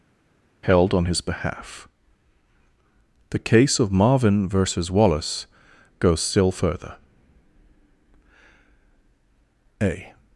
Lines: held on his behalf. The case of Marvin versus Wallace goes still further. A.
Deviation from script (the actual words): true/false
false